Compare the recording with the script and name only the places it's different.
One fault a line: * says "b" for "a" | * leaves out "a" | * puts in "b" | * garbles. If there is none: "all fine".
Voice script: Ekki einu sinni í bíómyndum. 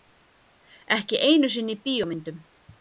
all fine